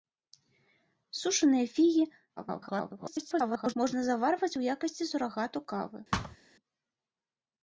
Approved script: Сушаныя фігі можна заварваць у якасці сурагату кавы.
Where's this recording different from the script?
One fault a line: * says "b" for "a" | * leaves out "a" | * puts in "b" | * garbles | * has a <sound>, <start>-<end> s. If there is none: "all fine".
* garbles
* has a thud, 6.1-6.4 s